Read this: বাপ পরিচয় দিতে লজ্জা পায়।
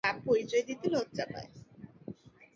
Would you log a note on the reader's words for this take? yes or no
no